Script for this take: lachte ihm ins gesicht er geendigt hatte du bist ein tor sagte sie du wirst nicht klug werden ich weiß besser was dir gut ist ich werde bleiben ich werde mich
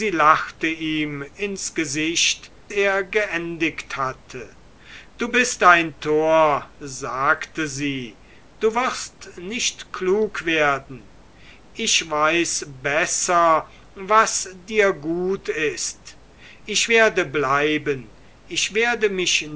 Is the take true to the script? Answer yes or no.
yes